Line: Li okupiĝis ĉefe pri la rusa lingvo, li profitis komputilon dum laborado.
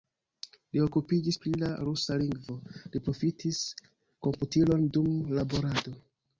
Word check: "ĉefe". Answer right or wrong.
wrong